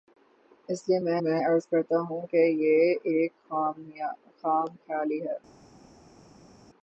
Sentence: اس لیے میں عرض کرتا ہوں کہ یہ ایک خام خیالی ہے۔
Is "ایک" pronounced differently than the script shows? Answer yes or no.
no